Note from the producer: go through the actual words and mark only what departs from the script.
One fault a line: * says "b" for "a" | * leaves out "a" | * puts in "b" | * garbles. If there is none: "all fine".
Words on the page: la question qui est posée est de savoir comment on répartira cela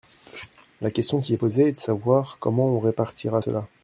all fine